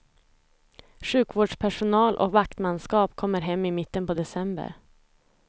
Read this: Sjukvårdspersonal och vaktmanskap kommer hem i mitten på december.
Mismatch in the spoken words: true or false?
false